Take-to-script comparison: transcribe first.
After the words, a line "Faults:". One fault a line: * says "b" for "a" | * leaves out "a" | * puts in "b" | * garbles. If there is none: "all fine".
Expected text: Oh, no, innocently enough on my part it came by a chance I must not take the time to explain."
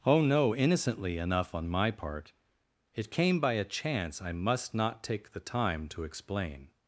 Oh, no, innocently enough on my part it came by a chance I must not take the time to explain."
Faults:
all fine